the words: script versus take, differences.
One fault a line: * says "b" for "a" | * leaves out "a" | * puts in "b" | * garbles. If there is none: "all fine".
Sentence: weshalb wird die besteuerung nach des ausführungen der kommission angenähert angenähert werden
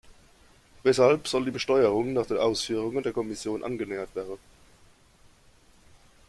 * says "soll" for "wird"
* says "den" for "des"
* leaves out "angenähert"